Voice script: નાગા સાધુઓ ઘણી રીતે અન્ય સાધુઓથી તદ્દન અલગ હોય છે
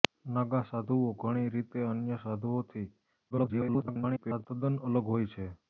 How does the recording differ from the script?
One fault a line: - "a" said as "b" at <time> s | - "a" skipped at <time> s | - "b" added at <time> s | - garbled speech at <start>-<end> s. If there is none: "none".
- garbled speech at 3.3-4.5 s